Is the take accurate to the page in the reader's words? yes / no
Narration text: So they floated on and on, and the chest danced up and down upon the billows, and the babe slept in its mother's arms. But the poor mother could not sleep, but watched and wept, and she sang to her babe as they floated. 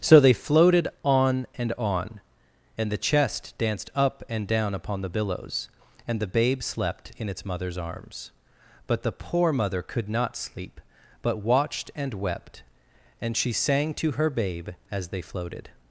yes